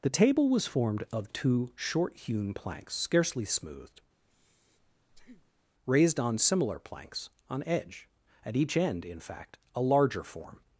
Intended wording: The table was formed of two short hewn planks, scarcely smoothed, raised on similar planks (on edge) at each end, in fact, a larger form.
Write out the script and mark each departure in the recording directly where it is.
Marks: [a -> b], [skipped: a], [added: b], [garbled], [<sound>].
The table was formed of two short hewn planks, scarcely smoothed, [breath] raised on similar planks (on edge) at each end, in fact, a larger form.